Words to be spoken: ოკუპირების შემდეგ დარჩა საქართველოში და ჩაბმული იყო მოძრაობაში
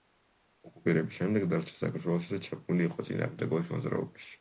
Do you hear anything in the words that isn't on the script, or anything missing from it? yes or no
yes